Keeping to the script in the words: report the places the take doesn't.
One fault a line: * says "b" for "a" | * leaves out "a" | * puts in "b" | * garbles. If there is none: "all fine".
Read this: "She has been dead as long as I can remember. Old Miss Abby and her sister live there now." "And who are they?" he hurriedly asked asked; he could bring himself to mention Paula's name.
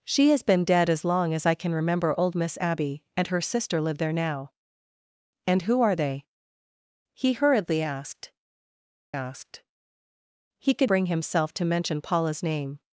all fine